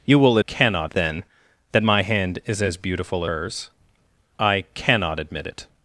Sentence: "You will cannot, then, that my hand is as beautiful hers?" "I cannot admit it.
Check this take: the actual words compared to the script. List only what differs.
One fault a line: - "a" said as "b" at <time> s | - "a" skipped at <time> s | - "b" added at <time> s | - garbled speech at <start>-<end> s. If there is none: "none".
none